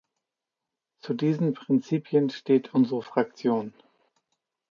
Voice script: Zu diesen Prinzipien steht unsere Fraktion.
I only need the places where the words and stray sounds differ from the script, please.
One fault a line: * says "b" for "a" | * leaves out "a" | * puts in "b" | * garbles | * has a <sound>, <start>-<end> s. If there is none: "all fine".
all fine